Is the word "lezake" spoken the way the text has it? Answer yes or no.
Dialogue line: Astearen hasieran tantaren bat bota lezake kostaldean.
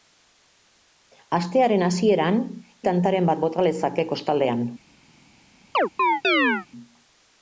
yes